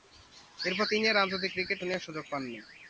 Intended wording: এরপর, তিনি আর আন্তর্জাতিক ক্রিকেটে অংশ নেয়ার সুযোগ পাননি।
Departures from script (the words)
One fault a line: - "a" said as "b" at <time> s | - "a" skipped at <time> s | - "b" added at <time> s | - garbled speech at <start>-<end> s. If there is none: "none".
- "অংশ" skipped at 1.8 s